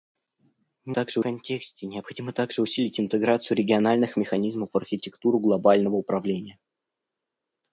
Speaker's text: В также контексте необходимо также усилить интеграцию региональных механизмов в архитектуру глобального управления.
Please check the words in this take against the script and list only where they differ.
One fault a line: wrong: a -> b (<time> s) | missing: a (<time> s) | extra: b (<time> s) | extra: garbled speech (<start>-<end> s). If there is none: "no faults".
no faults